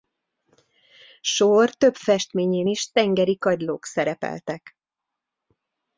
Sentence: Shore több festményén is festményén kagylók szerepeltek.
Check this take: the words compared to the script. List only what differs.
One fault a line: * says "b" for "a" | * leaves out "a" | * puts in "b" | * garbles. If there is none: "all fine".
* says "tengeri" for "festményén"